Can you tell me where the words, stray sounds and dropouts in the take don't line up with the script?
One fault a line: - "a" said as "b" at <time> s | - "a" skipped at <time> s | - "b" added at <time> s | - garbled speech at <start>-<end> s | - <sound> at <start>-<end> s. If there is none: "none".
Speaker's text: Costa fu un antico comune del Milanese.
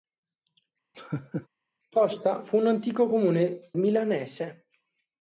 - laugh at 0.9-1.5 s
- "del" skipped at 3.7 s